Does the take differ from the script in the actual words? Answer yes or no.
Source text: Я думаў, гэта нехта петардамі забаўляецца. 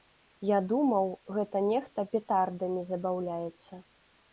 no